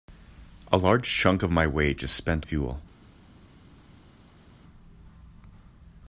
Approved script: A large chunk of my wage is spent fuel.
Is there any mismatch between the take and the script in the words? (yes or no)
no